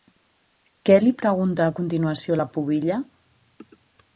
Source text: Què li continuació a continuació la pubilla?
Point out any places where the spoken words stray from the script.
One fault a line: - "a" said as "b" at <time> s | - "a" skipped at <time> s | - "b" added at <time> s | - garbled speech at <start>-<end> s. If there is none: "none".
- "continuació" said as "pregunta" at 1.2 s